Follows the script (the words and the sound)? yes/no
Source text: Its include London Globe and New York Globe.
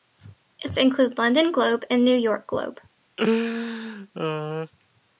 no